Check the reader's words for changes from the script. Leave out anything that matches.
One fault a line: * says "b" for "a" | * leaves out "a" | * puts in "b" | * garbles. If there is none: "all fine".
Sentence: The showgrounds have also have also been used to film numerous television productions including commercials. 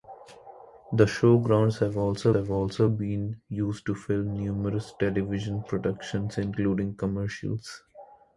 all fine